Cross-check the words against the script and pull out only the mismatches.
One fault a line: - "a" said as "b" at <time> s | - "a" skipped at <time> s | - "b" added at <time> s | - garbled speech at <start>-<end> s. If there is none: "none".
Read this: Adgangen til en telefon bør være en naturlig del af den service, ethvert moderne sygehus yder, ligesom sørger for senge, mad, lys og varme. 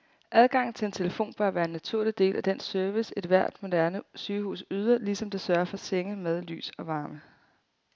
- "det" added at 5.3 s